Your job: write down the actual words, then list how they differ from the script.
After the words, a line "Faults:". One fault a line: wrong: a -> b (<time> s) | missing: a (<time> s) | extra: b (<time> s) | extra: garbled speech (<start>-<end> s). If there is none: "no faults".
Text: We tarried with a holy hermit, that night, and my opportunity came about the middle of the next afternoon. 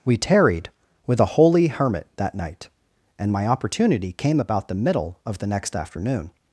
We tarried with a holy hermit, that night, and my opportunity came about the middle of the next afternoon.
Faults:
no faults